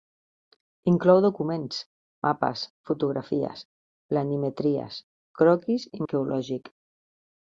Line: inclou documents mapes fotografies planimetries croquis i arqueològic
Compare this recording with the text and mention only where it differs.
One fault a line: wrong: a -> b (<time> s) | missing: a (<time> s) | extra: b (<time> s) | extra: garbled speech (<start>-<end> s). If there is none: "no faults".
no faults